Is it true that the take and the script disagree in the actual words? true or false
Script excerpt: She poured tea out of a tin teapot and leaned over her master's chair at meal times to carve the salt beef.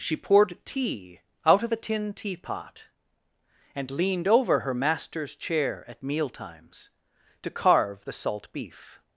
false